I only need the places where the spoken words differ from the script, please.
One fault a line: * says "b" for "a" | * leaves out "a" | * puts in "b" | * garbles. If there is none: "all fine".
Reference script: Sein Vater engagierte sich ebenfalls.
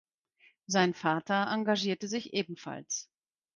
all fine